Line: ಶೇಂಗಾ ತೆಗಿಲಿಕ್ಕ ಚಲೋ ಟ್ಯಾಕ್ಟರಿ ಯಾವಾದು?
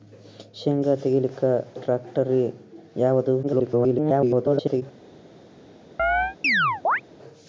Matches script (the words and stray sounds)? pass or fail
fail